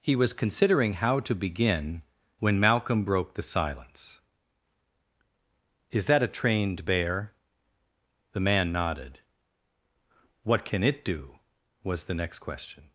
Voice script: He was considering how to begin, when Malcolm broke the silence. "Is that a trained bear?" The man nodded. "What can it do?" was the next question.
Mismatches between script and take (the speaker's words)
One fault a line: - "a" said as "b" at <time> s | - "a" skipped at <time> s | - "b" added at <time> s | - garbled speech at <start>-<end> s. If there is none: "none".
none